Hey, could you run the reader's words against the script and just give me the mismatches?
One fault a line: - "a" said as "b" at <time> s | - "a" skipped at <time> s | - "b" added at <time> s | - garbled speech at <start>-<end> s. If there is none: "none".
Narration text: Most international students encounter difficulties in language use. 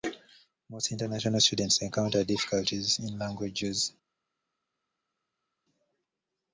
none